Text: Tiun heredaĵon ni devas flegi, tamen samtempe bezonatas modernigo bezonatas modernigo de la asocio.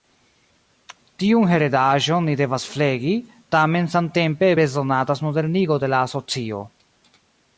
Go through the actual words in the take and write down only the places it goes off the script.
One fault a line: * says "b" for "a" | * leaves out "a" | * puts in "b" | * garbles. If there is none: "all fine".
* leaves out "bezonatas modernigo"